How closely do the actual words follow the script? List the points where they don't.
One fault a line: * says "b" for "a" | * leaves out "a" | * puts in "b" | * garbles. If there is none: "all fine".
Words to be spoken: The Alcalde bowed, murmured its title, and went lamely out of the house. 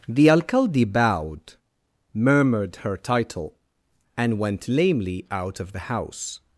* says "her" for "its"